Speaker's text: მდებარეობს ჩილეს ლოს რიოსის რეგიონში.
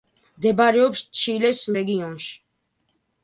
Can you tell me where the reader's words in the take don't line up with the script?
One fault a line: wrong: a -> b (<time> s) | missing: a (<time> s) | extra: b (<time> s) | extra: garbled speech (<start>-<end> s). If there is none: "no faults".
missing: ლოს რიოსის (1.6 s)